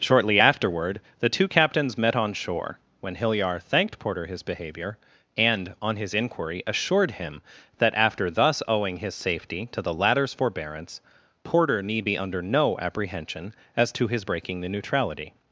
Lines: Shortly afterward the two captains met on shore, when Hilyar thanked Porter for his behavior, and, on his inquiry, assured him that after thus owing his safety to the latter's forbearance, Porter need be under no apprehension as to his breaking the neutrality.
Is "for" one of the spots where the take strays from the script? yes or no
yes